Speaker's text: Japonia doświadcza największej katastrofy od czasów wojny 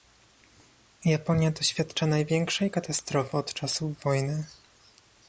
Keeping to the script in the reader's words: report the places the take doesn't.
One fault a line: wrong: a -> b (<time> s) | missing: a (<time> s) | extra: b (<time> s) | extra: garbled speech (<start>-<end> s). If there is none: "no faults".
no faults